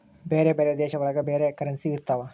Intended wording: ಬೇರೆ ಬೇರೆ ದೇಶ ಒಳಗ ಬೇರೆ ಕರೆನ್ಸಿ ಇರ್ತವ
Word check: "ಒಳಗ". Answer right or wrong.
right